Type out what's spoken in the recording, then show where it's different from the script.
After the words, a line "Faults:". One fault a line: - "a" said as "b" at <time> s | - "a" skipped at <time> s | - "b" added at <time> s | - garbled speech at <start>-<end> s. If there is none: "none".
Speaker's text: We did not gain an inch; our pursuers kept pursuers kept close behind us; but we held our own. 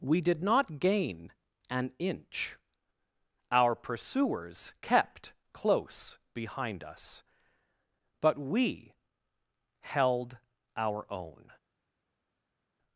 We did not gain an inch; our pursuers kept close behind us; but we held our own.
Faults:
- "pursuers kept" skipped at 5.3 s